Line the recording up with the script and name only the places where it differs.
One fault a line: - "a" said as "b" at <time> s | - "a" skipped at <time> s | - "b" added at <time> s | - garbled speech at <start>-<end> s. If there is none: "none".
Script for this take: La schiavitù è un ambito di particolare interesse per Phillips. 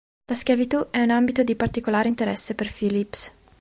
none